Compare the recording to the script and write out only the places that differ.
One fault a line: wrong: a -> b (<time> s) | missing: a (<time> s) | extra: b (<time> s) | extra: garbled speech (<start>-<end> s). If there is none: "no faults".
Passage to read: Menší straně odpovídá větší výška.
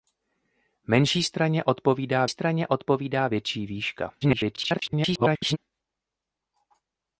extra: straně odpovídá (2.3 s)
extra: garbled speech (4.2-5.6 s)